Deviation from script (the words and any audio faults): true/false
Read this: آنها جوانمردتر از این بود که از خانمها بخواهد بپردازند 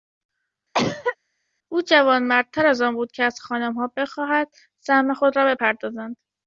true